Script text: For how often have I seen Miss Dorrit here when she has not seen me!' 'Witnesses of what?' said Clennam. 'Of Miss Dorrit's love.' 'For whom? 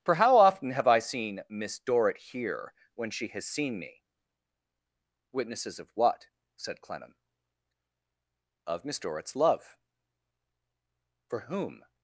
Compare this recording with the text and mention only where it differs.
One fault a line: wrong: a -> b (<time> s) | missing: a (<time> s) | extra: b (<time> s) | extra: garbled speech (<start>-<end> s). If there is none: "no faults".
missing: not (3.5 s)